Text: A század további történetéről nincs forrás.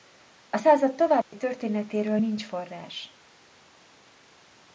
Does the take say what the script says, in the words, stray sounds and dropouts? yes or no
no